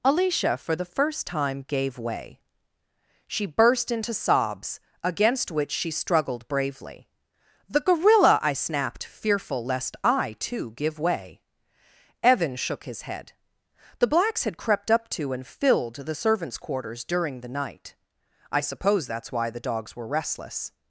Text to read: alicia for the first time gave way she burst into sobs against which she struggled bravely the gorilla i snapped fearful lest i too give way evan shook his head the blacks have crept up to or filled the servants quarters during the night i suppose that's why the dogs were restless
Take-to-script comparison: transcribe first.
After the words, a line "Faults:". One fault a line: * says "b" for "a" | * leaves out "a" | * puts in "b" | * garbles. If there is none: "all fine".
alicia for the first time gave way she burst into sobs against which she struggled bravely the gorilla i snapped fearful lest i too give way evan shook his head the blacks had crept up to and filled the servants quarters during the night i suppose that's why the dogs were restless
Faults:
* says "had" for "have"
* says "and" for "or"